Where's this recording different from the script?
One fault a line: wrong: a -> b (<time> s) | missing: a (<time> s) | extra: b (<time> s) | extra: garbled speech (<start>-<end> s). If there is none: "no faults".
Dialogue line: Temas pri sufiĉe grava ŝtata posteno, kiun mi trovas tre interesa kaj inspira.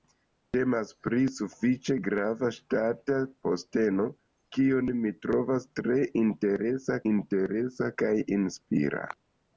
extra: interesa (7.1 s)